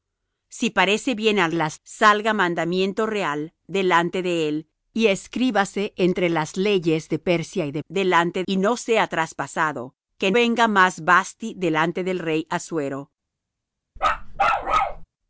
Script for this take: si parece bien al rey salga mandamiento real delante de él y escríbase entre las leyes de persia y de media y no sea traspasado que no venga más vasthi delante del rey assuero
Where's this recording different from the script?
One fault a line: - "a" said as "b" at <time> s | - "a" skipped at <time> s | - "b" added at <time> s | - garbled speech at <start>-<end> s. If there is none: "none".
- "rey" said as "las" at 1.5 s
- "media" said as "delante" at 7.9 s
- "no" skipped at 10.3 s